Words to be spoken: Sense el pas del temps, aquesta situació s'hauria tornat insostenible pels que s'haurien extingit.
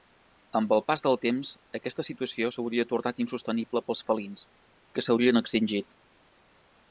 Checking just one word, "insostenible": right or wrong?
right